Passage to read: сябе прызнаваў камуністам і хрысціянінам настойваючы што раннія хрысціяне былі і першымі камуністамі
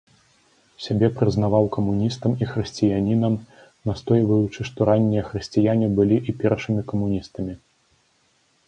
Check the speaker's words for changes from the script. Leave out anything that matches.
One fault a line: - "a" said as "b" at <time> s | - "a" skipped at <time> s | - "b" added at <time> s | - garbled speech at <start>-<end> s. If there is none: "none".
none